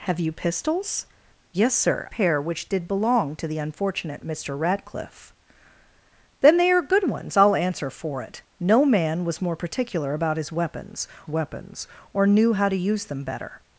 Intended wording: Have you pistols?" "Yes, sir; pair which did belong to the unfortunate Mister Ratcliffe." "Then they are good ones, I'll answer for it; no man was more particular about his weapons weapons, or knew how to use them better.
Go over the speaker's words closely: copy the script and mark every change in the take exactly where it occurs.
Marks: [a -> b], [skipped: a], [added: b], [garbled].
Have you pistols?" "Yes, sir; pair which did belong to the unfortunate Mister Ratcliffe." "Then they are good ones, I'll answer for it; no man was more particular about his weapons weapons, or knew how to use them better.